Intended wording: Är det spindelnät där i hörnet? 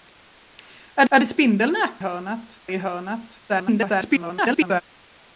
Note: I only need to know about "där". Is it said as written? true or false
false